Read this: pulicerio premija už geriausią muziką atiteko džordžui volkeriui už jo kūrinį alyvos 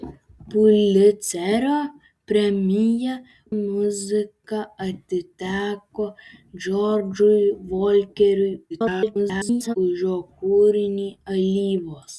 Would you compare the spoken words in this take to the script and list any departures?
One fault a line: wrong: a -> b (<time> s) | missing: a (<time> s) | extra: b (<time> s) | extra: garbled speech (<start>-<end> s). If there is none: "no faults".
missing: už geriausią (3.1 s)
extra: garbled speech (8.7-9.8 s)